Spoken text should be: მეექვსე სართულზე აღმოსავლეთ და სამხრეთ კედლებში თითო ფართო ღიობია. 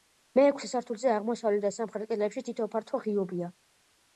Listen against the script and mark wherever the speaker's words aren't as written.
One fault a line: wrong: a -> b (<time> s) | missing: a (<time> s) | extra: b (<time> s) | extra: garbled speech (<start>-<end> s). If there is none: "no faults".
no faults